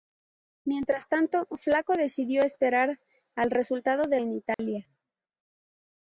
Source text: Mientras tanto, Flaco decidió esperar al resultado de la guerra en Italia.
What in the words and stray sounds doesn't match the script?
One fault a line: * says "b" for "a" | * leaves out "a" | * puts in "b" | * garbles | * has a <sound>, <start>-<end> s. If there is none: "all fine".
* leaves out "la guerra"
* has a dropout, 4.5-4.6 s